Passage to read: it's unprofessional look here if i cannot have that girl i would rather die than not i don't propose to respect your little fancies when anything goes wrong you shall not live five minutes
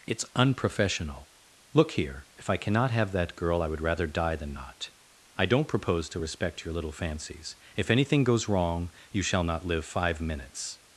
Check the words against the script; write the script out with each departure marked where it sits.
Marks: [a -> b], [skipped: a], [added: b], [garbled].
it's unprofessional look here if i cannot have that girl i would rather die than not i don't propose to respect your little fancies [when -> if] anything goes wrong you shall not live five minutes